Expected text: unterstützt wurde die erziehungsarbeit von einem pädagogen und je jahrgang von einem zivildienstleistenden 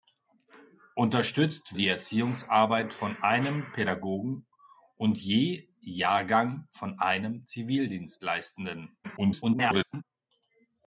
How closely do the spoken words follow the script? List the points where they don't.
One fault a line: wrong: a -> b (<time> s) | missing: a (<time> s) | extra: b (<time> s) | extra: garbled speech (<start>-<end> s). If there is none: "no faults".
missing: wurde (1.8 s)
extra: garbled speech (9.0-10.0 s)